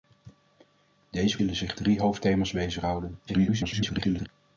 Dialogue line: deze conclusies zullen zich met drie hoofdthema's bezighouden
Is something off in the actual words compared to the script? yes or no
yes